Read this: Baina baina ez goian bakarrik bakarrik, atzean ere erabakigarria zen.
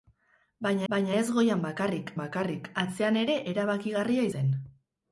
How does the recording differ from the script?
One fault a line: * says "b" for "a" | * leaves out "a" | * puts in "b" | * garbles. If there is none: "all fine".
all fine